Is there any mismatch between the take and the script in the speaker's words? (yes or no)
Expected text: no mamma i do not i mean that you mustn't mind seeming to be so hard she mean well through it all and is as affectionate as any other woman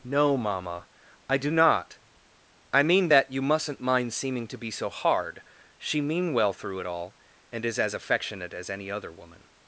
no